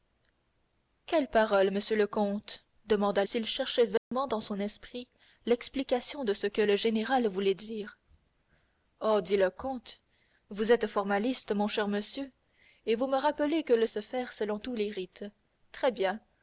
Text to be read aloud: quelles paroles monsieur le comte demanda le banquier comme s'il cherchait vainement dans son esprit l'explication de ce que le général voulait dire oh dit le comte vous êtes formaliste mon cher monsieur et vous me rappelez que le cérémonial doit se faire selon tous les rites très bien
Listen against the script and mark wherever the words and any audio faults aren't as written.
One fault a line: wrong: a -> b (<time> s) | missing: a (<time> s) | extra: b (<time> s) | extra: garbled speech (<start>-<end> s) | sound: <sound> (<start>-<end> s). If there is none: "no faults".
missing: le banquier comme (3.2 s)
sound: dropout (4.0-4.1 s)
missing: cérémonial doit (13.8 s)